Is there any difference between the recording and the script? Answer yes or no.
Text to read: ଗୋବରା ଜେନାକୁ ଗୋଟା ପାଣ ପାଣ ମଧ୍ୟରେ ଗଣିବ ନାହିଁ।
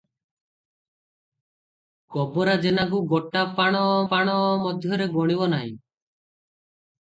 no